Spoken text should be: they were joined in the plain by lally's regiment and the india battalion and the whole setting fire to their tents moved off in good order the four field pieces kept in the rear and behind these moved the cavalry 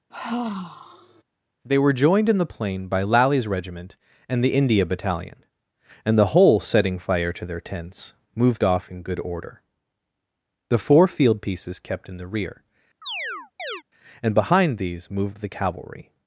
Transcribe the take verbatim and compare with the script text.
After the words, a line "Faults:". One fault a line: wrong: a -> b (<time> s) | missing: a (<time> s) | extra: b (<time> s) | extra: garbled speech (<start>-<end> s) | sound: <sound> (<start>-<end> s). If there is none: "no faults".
they were joined in the plain by lally's regiment and the india battalion and the whole setting fire to their tents moved off in good order the four field pieces kept in the rear and behind these moved the cavalry
Faults:
sound: sigh (0.1-1.2 s)
sound: chirp (13.0-13.8 s)